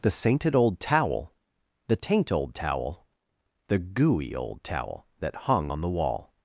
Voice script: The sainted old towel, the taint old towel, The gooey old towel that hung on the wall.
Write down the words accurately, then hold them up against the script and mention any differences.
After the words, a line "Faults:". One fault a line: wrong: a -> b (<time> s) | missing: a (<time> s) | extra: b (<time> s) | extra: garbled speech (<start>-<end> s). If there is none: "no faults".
The sainted old towel, the taint old towel, The gooey old towel that hung on the wall.
Faults:
no faults